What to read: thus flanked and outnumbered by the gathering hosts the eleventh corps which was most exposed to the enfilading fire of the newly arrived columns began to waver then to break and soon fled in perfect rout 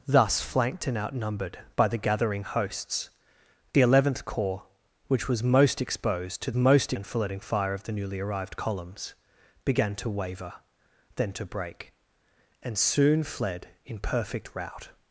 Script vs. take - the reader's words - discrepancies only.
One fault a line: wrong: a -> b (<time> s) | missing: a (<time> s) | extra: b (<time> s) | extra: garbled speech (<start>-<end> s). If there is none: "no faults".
wrong: the -> most (6.5 s)